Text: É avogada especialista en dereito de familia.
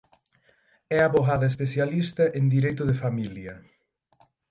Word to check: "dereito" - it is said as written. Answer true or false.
true